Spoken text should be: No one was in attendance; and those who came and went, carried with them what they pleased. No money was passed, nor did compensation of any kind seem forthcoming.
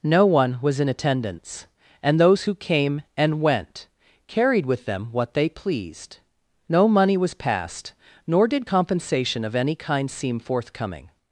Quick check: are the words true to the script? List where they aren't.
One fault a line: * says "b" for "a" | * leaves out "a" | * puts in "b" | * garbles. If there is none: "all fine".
all fine